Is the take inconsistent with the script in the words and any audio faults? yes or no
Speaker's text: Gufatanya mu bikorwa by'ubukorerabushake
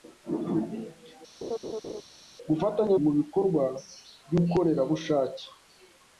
yes